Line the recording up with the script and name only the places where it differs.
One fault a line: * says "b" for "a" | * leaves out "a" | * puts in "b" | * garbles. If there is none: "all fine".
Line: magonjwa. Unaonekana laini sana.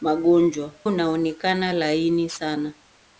all fine